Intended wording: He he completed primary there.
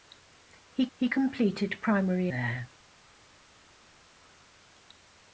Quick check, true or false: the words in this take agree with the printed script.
true